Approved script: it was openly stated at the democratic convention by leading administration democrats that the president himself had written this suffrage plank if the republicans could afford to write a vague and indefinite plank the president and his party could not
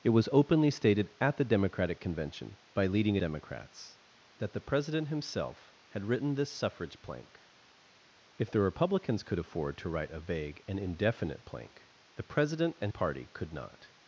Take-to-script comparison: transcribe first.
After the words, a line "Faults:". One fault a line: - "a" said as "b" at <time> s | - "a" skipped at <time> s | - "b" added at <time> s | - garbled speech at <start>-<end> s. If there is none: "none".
it was openly stated at the democratic convention by leading democrats that the president himself had written this suffrage plank if the republicans could afford to write a vague and indefinite plank the president and party could not
Faults:
- "administration" skipped at 3.2 s
- "his" skipped at 12.9 s